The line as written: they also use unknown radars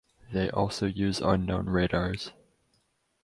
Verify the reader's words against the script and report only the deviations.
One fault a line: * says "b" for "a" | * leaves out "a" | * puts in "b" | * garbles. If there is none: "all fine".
all fine